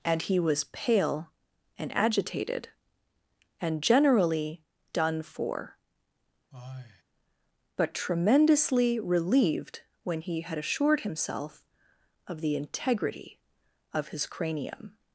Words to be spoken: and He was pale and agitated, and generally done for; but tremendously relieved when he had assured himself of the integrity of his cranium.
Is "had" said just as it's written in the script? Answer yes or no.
yes